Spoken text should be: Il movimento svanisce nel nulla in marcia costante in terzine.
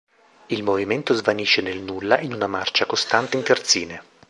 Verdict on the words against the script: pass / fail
fail